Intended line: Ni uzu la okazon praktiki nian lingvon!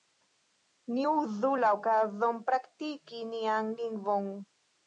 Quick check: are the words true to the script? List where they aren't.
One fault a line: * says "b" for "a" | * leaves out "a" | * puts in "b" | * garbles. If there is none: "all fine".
all fine